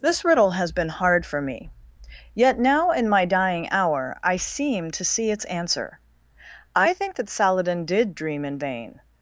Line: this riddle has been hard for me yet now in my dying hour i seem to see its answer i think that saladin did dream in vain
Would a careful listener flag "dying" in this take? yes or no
no